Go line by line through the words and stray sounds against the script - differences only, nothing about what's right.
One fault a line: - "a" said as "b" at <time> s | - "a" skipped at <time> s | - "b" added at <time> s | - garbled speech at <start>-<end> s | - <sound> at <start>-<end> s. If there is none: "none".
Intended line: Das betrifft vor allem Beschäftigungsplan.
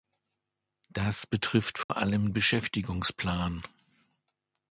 - dropout at 1.8-1.9 s